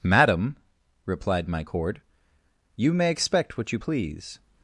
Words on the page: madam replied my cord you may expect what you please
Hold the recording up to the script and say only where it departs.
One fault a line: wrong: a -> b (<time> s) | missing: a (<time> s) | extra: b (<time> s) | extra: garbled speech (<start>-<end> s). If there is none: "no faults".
no faults